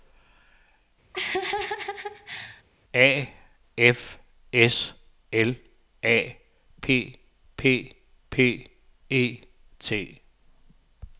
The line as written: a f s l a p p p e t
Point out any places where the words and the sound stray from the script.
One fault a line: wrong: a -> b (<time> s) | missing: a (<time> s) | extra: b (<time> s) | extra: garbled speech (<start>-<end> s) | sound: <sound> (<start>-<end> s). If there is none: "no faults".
sound: laugh (1.1-2.6 s)